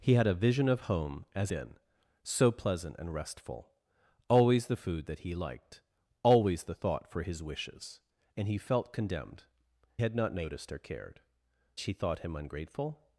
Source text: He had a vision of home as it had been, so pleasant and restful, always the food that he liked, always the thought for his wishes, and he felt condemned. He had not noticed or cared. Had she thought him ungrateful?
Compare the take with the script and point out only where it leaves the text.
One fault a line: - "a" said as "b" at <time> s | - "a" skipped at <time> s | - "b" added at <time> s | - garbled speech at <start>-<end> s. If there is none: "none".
- "it had" skipped at 1.5 s
- "He" skipped at 9.4 s
- "Had" skipped at 11.2 s